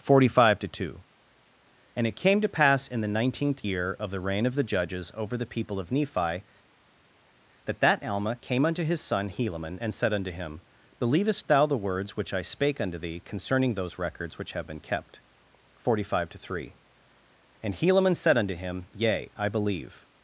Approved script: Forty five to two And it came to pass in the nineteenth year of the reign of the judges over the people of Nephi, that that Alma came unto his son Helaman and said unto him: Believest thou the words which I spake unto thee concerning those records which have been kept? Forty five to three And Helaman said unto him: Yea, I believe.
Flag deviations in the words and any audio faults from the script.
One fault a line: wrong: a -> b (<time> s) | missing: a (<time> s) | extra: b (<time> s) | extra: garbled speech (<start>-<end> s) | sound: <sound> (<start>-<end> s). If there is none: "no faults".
no faults